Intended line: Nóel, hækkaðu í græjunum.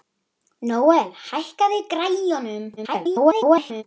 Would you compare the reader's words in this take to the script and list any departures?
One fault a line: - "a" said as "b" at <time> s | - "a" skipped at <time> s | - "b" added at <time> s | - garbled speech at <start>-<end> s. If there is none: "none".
- garbled speech at 2.8-3.8 s